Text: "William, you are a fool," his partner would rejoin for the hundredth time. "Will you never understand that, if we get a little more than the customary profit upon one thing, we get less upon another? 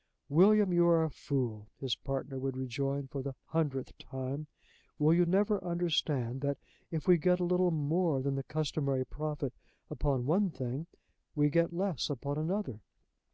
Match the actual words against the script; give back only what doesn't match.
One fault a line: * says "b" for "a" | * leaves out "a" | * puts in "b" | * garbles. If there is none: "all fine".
all fine